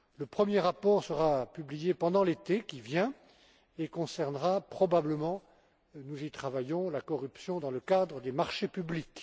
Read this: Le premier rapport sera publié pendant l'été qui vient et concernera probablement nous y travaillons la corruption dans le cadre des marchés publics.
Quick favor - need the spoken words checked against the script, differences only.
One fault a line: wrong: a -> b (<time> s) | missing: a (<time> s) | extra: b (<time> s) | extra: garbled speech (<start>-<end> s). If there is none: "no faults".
no faults